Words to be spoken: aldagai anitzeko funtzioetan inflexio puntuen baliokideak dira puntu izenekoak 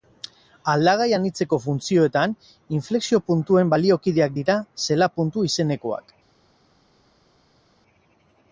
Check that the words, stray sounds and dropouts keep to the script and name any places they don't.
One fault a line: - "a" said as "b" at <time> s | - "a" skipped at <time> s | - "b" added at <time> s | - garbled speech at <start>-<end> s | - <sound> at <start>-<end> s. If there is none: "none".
- "zela" added at 4.9 s